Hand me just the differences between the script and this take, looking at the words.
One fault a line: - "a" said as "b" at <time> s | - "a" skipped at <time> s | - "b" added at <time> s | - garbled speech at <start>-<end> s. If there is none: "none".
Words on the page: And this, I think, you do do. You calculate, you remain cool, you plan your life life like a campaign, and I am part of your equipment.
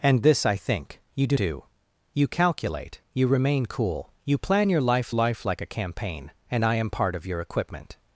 none